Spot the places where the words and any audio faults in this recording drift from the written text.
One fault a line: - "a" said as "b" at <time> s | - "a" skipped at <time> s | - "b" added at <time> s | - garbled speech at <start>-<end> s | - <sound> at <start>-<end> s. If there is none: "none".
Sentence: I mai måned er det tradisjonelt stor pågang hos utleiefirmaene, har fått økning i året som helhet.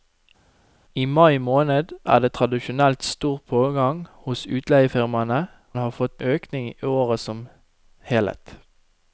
none